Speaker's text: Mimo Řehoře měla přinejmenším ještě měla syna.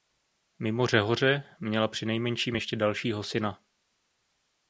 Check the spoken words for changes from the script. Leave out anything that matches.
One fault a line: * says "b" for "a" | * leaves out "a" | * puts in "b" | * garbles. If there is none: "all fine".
* says "dalšího" for "měla"